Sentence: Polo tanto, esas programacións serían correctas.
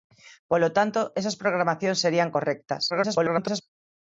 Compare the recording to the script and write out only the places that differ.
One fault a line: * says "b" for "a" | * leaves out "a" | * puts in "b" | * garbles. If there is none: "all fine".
* garbles